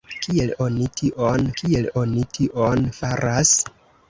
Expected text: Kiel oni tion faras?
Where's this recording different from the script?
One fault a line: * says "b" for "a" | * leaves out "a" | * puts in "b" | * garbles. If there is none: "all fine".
* puts in "kiel oni tion"